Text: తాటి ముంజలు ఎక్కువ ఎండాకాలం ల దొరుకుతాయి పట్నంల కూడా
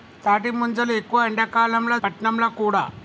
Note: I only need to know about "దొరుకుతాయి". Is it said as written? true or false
false